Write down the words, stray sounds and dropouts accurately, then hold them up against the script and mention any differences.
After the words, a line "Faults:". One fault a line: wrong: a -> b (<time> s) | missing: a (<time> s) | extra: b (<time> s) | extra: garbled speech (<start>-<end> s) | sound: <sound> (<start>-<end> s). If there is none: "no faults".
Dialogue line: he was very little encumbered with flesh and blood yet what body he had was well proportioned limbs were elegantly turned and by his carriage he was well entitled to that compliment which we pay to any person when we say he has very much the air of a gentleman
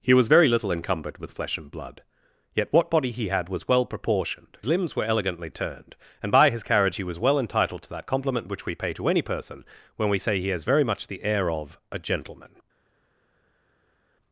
he was very little encumbered with flesh and blood yet what body he had was well proportioned limbs were elegantly turned and by his carriage he was well entitled to that compliment which we pay to any person when we say he has very much the air of a gentleman
Faults:
no faults